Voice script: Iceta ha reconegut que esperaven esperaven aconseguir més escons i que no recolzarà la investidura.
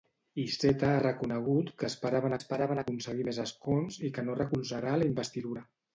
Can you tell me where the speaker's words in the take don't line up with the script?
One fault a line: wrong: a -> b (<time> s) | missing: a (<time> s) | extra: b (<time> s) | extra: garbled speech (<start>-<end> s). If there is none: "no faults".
no faults